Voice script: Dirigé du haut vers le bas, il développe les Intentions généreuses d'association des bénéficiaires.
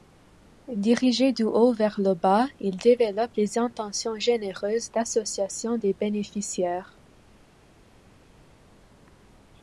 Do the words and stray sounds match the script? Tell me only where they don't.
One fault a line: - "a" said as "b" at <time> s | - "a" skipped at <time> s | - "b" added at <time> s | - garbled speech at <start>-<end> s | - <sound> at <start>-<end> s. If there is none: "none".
none